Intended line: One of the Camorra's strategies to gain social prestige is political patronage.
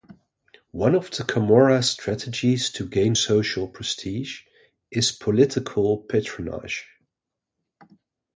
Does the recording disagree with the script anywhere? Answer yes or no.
no